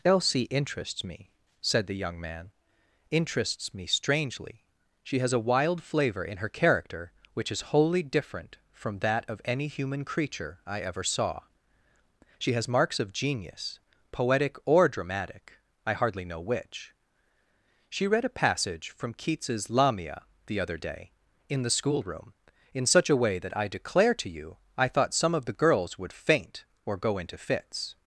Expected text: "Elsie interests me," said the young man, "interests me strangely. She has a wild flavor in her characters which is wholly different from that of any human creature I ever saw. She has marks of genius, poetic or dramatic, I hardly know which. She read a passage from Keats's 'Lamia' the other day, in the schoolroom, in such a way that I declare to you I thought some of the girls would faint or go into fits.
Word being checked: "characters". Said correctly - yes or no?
no